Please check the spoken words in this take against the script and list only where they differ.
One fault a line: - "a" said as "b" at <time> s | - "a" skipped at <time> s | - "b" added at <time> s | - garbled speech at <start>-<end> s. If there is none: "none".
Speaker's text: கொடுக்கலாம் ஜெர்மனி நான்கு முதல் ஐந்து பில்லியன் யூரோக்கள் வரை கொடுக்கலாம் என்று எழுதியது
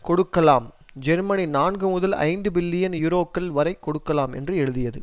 none